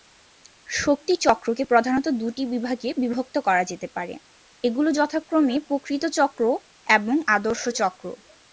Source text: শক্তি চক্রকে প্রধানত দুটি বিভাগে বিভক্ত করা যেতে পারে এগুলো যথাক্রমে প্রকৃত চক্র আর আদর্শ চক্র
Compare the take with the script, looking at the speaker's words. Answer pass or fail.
fail